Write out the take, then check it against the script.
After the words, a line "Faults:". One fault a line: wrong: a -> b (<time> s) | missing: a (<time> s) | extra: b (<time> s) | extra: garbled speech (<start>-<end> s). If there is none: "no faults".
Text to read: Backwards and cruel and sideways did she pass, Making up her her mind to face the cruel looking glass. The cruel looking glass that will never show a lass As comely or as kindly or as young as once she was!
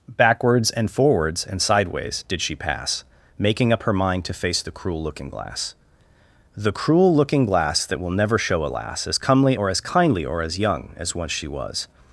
Backwards and forwards and sideways did she pass, Making up her mind to face the cruel looking glass. The cruel looking glass that will never show a lass As comely or as kindly or as young as once she was!
Faults:
wrong: cruel -> forwards (0.9 s)
missing: her (3.9 s)